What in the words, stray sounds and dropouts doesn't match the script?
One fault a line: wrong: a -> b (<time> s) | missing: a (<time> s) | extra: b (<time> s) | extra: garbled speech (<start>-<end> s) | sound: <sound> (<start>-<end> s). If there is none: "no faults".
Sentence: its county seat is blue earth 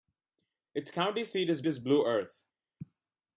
extra: is (1.6 s)